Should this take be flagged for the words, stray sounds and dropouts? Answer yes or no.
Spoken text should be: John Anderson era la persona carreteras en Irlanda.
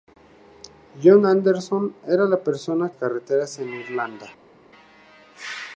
no